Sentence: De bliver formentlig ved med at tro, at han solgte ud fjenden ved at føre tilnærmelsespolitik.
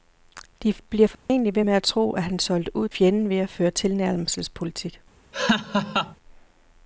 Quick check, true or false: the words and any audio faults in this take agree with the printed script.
false